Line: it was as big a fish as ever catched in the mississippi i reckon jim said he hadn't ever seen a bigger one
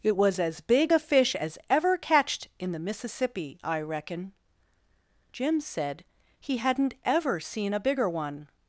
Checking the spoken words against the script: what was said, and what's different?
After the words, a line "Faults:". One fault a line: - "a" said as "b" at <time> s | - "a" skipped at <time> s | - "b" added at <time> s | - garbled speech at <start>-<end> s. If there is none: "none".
it was as big a fish as ever catched in the mississippi i reckon jim said he hadn't ever seen a bigger one
Faults:
none